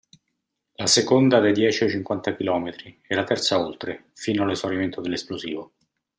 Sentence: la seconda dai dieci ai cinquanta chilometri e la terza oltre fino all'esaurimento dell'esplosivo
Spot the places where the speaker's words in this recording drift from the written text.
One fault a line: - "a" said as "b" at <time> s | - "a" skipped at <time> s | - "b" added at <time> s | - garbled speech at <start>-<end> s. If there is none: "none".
none